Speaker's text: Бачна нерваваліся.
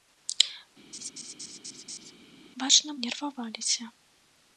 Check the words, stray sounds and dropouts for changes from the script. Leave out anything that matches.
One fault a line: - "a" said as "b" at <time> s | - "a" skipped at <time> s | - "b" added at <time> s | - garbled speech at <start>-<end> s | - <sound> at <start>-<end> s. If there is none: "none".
- laugh at 0.9-2.1 s